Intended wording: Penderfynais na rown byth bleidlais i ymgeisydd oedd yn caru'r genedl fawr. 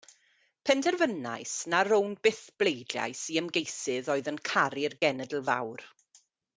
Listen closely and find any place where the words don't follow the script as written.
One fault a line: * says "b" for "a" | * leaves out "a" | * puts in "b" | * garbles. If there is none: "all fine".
all fine